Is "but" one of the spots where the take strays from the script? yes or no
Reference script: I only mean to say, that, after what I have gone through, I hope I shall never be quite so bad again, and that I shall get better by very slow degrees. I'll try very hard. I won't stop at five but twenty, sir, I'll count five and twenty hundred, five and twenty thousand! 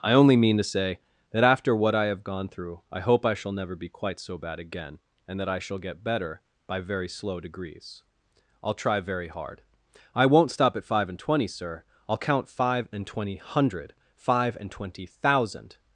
yes